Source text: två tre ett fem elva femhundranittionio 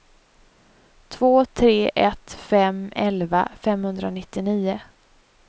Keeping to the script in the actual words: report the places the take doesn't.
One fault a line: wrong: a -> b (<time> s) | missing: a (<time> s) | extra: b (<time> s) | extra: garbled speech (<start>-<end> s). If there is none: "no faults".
no faults